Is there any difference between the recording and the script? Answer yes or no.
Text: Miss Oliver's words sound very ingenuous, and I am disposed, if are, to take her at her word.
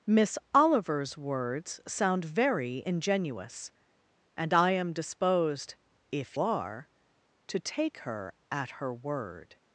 no